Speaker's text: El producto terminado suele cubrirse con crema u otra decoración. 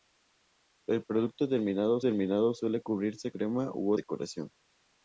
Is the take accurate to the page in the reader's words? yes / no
no